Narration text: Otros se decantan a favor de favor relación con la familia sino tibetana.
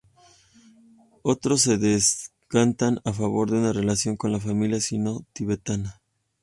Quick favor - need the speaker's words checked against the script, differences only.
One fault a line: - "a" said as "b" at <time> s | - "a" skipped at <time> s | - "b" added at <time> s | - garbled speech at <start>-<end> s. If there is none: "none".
- "favor" said as "una" at 3.6 s